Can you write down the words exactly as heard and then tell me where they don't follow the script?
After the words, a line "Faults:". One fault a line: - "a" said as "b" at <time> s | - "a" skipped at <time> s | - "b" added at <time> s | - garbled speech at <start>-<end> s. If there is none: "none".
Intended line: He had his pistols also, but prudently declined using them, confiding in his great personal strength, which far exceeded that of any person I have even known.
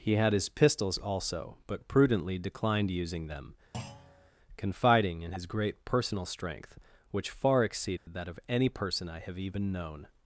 He had his pistols also, but prudently declined using them, confiding in his great personal strength, which far exceeded that of any person I have even known.
Faults:
none